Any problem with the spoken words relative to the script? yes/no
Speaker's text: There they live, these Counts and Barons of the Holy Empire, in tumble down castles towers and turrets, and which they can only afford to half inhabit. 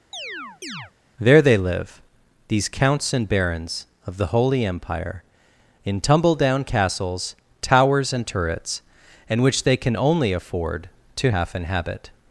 no